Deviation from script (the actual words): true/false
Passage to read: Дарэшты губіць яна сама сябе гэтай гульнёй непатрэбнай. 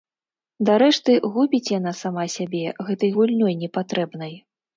false